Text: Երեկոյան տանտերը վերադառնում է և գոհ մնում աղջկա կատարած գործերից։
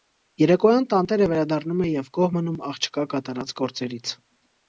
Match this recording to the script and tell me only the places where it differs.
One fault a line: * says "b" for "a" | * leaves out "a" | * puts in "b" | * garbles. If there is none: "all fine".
all fine